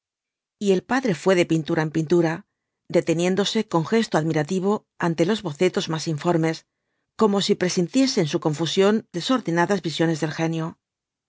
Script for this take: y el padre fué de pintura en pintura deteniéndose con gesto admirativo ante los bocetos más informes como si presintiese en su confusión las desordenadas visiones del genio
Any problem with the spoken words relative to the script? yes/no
yes